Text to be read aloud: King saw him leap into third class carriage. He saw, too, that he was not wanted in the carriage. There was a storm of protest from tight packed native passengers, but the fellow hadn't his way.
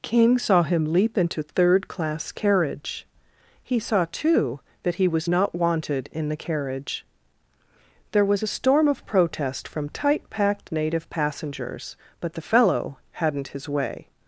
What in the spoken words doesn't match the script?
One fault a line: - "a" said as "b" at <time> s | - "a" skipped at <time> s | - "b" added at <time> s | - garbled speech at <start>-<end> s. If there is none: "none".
none